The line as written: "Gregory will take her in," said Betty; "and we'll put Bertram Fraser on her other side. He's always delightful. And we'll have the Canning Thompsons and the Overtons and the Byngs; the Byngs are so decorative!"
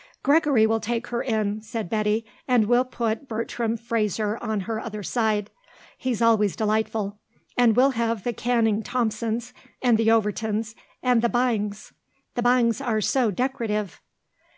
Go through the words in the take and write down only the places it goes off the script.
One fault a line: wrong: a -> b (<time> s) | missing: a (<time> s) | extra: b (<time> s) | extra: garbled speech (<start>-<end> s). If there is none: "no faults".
no faults